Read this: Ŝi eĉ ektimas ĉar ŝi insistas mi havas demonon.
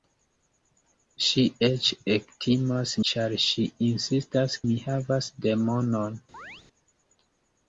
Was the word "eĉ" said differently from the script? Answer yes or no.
no